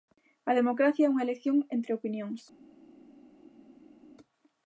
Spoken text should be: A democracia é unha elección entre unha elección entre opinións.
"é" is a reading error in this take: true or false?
false